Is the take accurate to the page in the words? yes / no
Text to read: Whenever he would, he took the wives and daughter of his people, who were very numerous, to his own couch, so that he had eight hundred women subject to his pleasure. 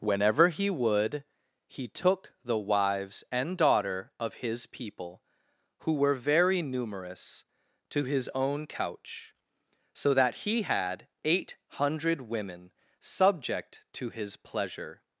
yes